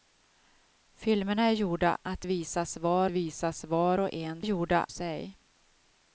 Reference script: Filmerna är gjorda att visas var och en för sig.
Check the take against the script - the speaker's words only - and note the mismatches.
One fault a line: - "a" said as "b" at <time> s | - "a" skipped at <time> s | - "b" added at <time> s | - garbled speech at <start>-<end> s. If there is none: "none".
- "visas var" added at 3.1 s
- "för" said as "gjorda" at 4.4 s